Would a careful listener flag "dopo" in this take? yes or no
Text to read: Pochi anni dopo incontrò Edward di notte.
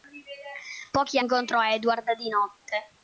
yes